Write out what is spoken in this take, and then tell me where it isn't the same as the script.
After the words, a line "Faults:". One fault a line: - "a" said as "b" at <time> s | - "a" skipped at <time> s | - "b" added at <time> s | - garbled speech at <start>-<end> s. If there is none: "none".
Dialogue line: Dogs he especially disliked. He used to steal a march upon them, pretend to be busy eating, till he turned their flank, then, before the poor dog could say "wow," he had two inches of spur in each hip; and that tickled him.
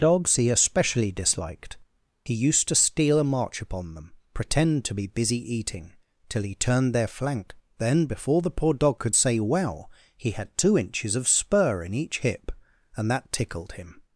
Dogs he especially disliked. He used to steal a march upon them, pretend to be busy eating, till he turned their flank, then, before the poor dog could say "well," he had two inches of spur in each hip; and that tickled him.
Faults:
- "wow" said as "well" at 9.4 s